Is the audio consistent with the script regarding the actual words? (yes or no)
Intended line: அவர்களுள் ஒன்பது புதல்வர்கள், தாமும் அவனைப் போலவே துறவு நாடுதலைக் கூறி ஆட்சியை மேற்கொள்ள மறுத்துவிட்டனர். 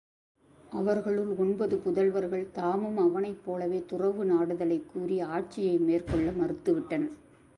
yes